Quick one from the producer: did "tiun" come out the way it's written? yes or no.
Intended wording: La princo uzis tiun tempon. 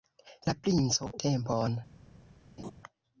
no